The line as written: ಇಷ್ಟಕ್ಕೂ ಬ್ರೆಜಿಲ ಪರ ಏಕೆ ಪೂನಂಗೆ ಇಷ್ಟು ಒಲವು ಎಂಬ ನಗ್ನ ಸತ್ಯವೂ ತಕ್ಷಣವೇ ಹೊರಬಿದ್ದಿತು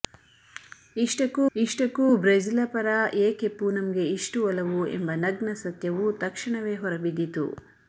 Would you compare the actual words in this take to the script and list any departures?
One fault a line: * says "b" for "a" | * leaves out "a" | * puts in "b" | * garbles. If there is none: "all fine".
* puts in "ಇಷ್ಟಕ್ಕೂ"